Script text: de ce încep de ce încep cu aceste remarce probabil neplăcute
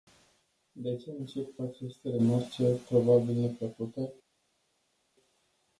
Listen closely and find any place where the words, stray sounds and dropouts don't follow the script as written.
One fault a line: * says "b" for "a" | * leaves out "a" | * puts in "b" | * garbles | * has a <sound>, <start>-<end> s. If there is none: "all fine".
* leaves out "de ce încep"